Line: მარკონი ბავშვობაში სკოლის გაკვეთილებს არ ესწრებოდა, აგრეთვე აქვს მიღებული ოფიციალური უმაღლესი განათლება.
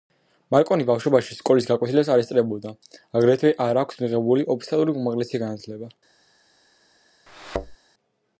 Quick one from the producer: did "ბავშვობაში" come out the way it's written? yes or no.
yes